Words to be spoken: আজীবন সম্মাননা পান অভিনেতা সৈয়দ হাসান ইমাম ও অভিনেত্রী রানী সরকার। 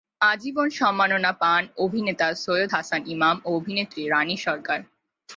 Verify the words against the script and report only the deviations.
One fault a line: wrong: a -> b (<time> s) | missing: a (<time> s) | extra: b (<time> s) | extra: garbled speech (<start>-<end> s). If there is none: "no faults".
no faults